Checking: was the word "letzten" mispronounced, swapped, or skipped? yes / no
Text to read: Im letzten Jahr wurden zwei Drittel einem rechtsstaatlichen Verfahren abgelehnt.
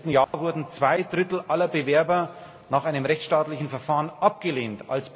no